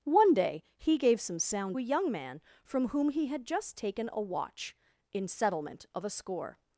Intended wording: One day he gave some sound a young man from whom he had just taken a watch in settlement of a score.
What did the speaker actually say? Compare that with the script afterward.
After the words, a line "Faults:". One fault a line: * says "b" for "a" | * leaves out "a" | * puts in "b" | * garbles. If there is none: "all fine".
One day he gave some sound a young man from whom he had just taken a watch in settlement of a score.
Faults:
all fine